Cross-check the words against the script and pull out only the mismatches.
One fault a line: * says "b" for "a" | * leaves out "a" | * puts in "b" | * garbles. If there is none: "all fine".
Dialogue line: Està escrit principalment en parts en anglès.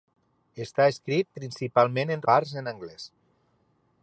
all fine